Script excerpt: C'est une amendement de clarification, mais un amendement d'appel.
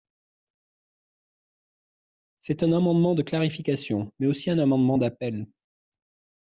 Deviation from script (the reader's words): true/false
true